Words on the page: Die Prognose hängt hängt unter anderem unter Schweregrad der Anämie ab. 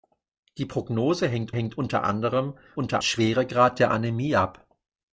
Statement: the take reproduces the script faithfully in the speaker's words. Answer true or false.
true